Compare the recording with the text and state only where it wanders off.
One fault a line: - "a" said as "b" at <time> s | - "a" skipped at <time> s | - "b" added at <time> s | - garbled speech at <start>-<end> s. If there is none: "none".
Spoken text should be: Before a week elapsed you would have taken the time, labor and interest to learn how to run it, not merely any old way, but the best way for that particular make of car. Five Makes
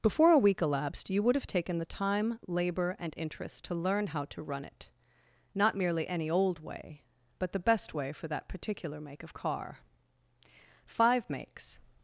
none